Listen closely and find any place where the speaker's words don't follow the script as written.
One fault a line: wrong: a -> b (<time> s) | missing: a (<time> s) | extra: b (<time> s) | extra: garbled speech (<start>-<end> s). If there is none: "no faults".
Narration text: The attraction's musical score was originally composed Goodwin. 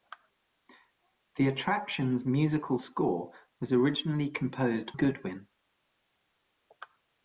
no faults